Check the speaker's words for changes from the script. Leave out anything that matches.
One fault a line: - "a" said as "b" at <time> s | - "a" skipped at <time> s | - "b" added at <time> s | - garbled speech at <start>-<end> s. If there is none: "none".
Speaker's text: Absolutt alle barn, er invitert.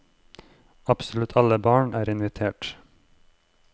none